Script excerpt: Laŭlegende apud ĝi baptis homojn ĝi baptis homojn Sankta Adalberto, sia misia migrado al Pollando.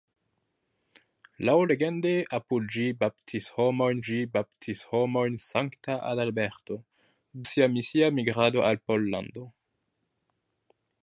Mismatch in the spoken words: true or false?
false